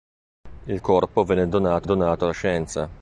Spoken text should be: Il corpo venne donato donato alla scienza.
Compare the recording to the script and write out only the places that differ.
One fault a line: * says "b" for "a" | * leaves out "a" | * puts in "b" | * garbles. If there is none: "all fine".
all fine